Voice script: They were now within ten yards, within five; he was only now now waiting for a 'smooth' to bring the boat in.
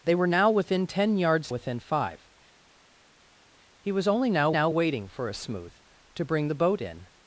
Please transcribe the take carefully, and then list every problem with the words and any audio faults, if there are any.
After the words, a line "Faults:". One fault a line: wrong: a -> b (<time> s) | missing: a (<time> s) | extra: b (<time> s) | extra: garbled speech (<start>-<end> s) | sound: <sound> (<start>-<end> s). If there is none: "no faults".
They were now within ten yards, within five; he was only now now waiting for a 'smooth' to bring the boat in.
Faults:
no faults